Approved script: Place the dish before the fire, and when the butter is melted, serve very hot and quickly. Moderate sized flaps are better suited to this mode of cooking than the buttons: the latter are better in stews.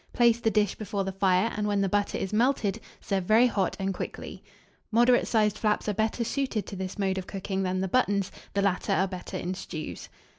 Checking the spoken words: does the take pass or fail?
pass